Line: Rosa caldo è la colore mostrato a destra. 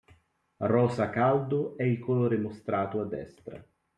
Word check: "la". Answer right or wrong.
wrong